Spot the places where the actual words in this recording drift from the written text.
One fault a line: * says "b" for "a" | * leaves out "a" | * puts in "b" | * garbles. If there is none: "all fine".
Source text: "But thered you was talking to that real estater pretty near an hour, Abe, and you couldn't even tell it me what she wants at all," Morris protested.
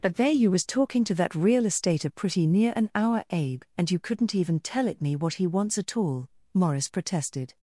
* says "there" for "thered"
* says "he" for "she"